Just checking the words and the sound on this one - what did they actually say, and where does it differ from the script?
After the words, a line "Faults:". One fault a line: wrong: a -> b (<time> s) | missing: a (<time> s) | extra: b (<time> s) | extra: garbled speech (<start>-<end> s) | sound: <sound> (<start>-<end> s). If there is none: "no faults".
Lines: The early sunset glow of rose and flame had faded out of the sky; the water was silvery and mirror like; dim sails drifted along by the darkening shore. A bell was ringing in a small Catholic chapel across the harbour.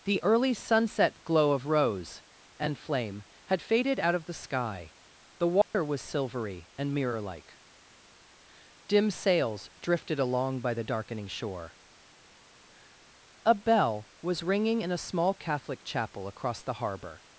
The early sunset glow of rose and flame had faded out of the sky; the water was silvery and mirror like; dim sails drifted along by the darkening shore. A bell was ringing in a small Catholic chapel across the harbour.
Faults:
sound: dropout (5.6-5.7 s)